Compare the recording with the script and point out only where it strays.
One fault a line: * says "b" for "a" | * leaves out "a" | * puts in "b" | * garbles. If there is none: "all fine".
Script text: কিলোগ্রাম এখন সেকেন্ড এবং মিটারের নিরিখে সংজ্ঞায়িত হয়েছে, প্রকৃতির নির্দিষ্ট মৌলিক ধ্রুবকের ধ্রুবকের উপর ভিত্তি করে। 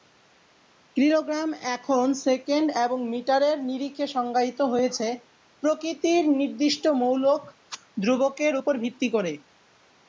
* leaves out "ধ্রুবকের"